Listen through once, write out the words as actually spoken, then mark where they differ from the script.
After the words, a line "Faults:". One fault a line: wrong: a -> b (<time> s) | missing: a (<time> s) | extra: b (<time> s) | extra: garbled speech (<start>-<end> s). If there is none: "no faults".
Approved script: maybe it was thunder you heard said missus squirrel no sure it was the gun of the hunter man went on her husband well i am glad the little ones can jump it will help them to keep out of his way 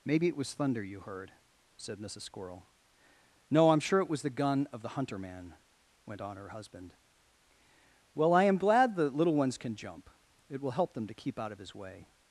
maybe it was thunder you heard said missus squirrel no i'm sure it was the gun of the hunter man went on her husband well i am glad the little ones can jump it will help them to keep out of his way
Faults:
extra: i'm (3.7 s)